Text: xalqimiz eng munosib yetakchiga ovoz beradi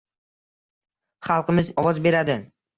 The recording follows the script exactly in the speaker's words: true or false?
false